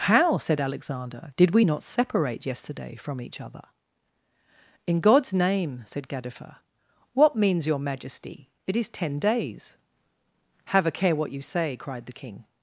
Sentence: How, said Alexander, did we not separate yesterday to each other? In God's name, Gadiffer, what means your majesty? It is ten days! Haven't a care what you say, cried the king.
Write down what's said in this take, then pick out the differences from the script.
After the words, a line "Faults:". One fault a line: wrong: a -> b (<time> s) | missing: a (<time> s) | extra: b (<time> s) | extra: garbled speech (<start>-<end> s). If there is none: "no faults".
How, said Alexander, did we not separate yesterday from each other? In God's name, said Gadiffer, what means your majesty? It is ten days! Have a care what you say, cried the king.
Faults:
wrong: to -> from (2.9 s)
extra: said (5.8 s)
wrong: Haven't -> Have (10.7 s)